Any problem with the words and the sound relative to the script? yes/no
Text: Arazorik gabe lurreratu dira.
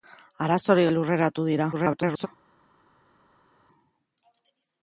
yes